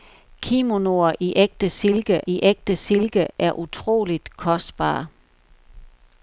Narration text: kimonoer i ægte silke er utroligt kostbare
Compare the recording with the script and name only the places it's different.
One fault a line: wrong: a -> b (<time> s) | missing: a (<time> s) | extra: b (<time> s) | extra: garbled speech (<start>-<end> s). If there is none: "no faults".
extra: i ægte silke (2.3 s)